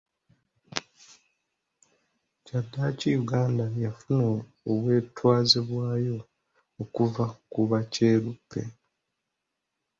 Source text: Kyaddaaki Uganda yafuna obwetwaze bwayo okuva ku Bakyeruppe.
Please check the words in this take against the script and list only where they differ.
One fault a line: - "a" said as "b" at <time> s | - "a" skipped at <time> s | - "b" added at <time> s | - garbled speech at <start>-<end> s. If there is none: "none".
none